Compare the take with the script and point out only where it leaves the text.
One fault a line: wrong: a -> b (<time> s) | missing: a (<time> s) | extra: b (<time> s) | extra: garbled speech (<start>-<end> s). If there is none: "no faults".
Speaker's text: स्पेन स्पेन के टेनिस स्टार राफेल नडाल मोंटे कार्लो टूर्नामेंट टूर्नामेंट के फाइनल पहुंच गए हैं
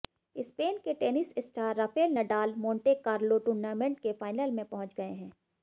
missing: स्पेन (0.8 s)
missing: टूर्नामेंट (4.0 s)
extra: में (4.5 s)